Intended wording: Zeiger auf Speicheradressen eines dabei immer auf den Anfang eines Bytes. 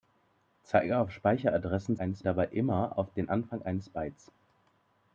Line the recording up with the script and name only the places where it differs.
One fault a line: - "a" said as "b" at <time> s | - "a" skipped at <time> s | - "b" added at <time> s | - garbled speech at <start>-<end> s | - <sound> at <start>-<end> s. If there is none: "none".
none